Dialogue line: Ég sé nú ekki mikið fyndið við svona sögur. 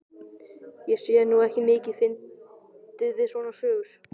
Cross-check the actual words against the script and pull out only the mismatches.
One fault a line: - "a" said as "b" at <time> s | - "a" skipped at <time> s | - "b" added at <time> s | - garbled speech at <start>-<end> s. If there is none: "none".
none